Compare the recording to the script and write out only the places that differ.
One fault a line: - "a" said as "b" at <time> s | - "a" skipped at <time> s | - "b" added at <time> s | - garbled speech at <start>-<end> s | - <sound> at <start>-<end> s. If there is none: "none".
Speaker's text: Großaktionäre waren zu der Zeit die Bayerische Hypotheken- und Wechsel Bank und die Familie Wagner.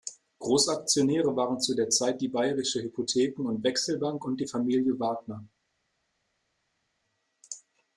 none